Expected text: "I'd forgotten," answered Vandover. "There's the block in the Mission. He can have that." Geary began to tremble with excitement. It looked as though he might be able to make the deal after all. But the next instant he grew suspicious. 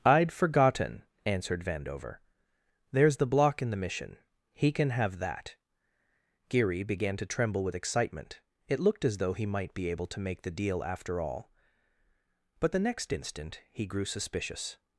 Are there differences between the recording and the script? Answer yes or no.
no